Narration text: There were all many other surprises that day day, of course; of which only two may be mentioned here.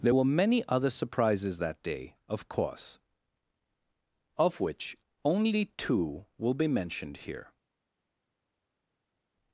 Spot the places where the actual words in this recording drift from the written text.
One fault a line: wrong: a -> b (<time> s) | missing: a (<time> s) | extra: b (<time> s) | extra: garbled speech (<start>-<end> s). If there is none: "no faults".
missing: all (0.2 s)
missing: day (2.2 s)
wrong: may -> will (6.4 s)